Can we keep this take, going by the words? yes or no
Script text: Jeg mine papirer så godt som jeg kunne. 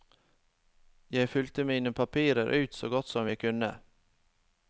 no